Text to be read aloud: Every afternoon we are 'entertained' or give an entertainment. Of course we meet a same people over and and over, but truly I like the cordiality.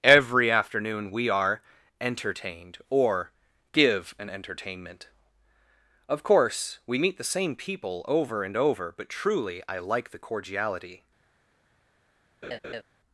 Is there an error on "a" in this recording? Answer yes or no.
yes